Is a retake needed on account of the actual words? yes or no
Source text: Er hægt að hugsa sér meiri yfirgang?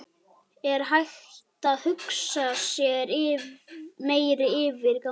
no